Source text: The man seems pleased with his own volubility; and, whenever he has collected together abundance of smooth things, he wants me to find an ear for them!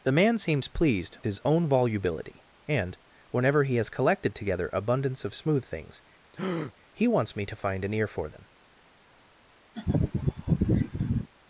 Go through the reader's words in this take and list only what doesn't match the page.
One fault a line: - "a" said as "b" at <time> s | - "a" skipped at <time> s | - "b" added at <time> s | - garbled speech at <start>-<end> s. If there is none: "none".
- "with" skipped at 1.2 s